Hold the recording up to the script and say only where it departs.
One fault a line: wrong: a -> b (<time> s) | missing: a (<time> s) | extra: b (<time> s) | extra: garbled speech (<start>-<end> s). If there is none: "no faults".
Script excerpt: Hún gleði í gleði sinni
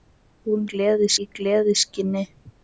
no faults